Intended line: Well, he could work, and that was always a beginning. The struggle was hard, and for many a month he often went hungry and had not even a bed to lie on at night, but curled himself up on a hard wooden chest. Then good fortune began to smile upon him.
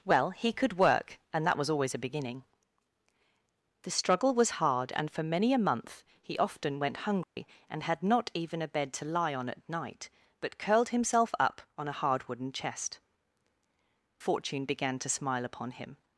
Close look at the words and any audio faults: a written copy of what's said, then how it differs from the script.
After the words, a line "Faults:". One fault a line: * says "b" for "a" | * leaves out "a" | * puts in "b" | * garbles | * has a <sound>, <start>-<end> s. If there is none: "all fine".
Well, he could work, and that was always a beginning. The struggle was hard, and for many a month he often went hungry and had not even a bed to lie on at night, but curled himself up on a hard wooden chest. Fortune began to smile upon him.
Faults:
* has a dropout, 7.2-7.4 s
* leaves out "Then good"